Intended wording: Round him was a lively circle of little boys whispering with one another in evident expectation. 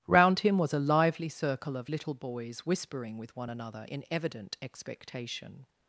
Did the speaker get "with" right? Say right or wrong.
right